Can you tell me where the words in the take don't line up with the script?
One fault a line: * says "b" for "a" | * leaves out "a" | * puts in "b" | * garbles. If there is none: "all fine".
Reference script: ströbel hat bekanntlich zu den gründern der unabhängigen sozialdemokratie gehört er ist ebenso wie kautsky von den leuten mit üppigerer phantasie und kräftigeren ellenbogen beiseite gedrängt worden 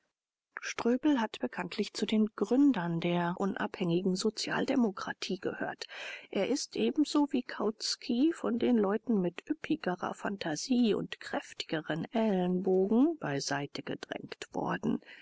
all fine